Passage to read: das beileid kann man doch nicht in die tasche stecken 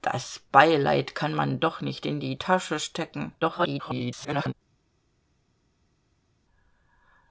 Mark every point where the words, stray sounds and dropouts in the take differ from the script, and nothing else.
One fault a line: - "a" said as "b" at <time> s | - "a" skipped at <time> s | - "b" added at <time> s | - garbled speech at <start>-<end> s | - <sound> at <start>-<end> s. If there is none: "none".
- garbled speech at 3.4-4.5 s